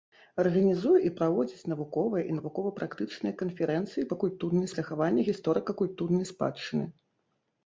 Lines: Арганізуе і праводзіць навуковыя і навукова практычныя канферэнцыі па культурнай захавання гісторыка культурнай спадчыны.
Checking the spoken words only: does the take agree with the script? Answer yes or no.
yes